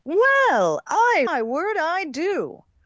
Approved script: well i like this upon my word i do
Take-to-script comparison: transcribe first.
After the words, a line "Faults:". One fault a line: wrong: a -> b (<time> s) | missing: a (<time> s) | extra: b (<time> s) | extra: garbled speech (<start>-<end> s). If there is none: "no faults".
well i my word i do
Faults:
missing: like this upon (1.3 s)